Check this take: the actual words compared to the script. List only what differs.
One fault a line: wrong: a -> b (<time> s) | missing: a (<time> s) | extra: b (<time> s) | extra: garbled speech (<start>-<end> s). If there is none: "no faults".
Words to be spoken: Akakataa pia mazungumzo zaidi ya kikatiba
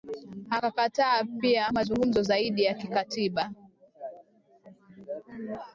no faults